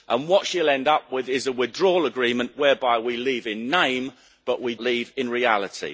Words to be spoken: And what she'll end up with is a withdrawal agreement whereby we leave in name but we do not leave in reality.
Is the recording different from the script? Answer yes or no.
yes